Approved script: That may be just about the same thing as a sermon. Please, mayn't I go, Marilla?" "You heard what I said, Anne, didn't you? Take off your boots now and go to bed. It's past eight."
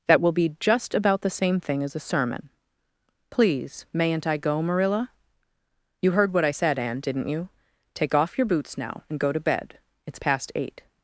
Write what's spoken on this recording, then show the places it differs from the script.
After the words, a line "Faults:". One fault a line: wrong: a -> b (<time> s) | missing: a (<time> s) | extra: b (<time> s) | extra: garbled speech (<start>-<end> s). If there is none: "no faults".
That will be just about the same thing as a sermon. Please, mayn't I go, Marilla?" "You heard what I said, Anne, didn't you? Take off your boots now and go to bed. It's past eight."
Faults:
wrong: may -> will (0.2 s)